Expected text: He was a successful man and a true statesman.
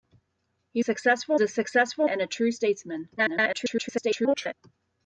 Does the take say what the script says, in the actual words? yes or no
no